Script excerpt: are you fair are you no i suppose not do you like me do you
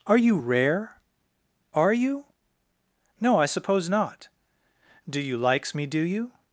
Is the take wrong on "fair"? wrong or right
wrong